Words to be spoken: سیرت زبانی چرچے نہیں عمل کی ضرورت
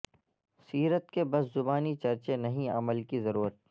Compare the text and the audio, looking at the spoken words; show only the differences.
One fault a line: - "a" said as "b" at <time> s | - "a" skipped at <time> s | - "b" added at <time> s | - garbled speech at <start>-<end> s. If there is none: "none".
- "کے بس" added at 1.1 s